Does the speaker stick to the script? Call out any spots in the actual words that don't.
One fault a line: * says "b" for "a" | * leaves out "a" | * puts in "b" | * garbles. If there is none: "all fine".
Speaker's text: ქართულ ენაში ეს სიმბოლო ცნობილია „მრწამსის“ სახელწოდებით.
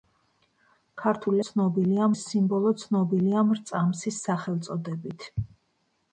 * says "ცნობილია" for "ენაში"